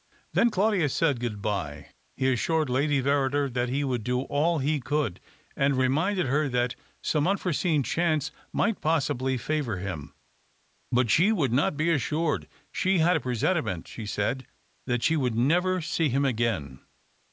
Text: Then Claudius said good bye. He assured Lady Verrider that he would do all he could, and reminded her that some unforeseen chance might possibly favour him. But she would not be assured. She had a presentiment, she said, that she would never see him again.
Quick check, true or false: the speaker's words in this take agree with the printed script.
true